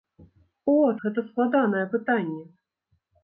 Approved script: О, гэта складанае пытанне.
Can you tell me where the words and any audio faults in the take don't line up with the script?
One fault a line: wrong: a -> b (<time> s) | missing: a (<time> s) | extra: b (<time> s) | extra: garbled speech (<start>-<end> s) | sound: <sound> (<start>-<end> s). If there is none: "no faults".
no faults